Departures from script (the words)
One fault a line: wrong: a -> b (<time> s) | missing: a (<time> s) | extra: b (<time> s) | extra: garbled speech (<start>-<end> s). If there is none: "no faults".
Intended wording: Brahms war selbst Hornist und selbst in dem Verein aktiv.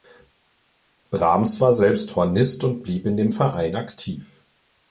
wrong: selbst -> blieb (2.8 s)